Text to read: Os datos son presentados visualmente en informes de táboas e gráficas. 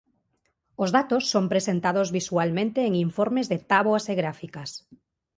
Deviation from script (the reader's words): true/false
false